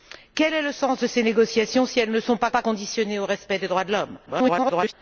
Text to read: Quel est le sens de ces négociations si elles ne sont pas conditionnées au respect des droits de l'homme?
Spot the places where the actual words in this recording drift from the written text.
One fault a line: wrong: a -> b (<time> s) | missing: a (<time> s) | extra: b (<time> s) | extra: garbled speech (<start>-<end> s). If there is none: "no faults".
extra: pas (2.5 s)
extra: garbled speech (4.3-4.9 s)